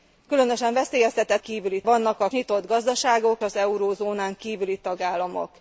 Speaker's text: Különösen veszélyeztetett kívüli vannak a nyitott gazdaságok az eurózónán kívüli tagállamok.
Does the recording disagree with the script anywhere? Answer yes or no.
no